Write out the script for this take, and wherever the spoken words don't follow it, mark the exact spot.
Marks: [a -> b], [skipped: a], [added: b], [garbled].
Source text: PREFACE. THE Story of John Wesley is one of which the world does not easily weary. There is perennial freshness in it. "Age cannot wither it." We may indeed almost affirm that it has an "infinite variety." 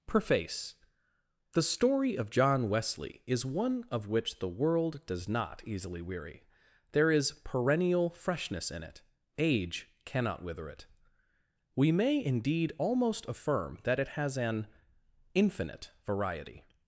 PREFACE. THE Story of John Wesley is one of which the world does not easily weary. There is perennial freshness in it. "Age cannot wither it." We may indeed almost affirm that it has an "infinite variety."